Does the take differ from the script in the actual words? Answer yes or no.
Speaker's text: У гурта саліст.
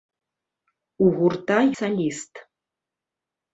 no